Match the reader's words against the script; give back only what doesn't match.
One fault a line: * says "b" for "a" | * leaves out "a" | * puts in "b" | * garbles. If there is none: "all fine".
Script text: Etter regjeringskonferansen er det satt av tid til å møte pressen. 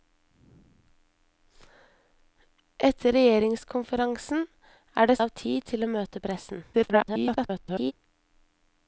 * leaves out "satt"
* garbles